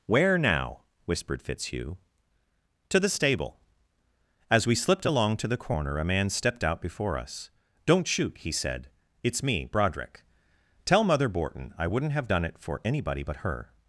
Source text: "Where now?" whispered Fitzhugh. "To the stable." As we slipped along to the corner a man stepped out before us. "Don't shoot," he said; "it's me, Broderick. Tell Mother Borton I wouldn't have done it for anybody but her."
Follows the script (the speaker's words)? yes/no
yes